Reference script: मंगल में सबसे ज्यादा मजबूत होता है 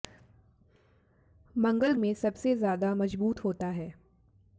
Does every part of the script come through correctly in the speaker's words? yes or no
yes